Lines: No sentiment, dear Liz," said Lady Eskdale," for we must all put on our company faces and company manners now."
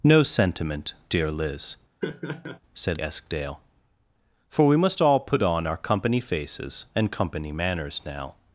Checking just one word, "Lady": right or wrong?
wrong